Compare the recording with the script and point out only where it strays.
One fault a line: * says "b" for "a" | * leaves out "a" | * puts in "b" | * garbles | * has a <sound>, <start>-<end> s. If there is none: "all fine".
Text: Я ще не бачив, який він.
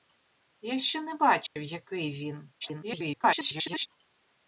* has a dropout, 1.5-1.6 s
* garbles